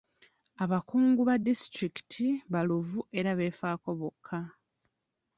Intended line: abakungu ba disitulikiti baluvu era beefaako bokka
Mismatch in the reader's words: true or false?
false